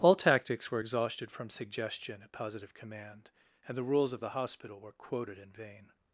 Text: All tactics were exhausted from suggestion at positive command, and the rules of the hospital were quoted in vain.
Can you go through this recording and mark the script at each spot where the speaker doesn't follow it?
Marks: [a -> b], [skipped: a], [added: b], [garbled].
All tactics were exhausted from suggestion at positive command, and the rules of the hospital were quoted in vain.